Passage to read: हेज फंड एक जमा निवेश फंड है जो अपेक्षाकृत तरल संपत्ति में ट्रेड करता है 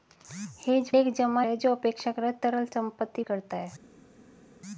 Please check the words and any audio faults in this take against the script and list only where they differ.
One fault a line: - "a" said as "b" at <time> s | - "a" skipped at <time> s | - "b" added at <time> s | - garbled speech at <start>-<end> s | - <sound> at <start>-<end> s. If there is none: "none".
- "फंड" skipped at 0.9 s
- "निवेश फंड" skipped at 1.4 s
- "में ट्रेड" skipped at 3.2 s